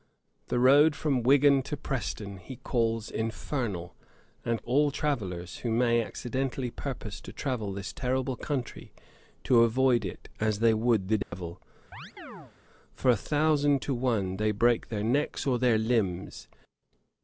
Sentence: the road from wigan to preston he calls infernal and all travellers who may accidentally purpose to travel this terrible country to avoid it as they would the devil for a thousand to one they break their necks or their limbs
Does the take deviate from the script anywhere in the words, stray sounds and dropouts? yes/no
yes